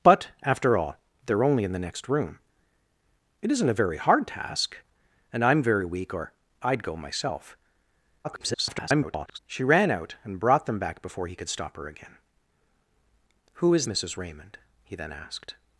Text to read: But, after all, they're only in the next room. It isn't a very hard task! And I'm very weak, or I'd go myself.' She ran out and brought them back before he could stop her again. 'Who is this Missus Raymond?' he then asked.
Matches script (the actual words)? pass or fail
fail